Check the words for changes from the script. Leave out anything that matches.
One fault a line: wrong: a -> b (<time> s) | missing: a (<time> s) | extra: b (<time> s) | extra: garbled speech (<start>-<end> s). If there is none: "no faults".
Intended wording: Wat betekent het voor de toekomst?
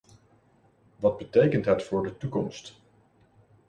no faults